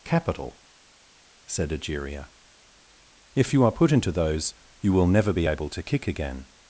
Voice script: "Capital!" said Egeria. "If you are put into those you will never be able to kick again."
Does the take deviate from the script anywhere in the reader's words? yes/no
no